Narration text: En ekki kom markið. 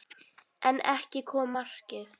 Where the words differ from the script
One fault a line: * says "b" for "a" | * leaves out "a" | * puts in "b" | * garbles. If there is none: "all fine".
all fine